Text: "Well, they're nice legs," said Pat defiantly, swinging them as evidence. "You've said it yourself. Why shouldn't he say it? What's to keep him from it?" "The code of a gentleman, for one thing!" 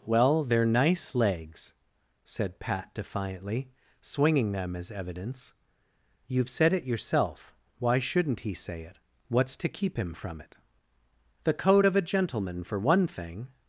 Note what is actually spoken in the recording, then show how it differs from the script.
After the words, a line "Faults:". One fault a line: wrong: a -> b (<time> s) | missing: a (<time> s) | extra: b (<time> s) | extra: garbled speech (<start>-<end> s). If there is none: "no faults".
"Well, they're nice legs," said Pat defiantly, swinging them as evidence. "You've said it yourself. Why shouldn't he say it? What's to keep him from it?" "The code of a gentleman, for one thing!"
Faults:
no faults